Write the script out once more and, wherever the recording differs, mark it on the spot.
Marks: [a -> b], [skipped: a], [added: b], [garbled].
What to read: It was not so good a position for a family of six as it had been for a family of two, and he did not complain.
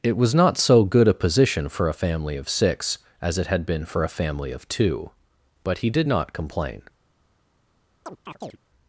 It was not so good a position for a family of six as it had been for a family of two, [and -> but] he did not complain.